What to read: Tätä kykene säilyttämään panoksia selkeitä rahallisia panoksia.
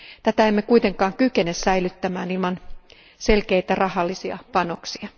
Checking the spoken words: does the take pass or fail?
fail